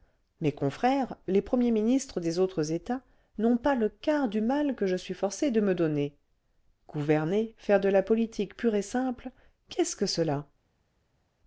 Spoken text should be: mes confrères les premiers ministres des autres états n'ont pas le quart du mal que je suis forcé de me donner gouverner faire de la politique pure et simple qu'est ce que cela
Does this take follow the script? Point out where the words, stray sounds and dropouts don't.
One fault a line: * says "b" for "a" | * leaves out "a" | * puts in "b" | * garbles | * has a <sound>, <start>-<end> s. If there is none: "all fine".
all fine